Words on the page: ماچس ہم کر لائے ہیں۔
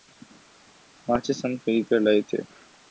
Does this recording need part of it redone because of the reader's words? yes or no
yes